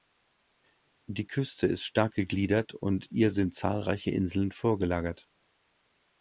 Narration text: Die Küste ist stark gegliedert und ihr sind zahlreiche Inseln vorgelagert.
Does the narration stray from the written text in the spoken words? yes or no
no